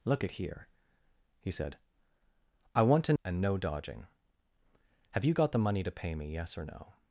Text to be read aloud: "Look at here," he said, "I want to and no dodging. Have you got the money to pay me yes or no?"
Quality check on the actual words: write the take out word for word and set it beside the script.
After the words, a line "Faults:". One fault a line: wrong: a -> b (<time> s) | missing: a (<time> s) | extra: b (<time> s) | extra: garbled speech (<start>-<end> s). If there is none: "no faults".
"Look at here," he said, "I want to and no dodging. Have you got the money to pay me yes or no?"
Faults:
no faults